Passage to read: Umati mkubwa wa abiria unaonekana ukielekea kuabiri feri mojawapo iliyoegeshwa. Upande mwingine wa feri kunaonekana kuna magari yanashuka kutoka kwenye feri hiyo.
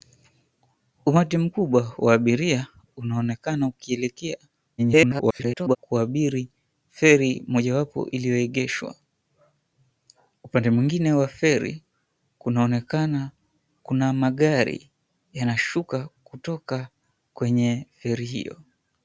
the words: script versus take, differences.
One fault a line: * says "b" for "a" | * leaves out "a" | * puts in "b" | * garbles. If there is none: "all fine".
* garbles